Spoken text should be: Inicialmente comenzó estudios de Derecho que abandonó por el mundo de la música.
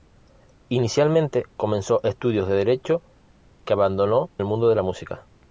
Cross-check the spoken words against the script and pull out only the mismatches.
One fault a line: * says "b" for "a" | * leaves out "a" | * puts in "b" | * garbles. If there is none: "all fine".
* leaves out "por"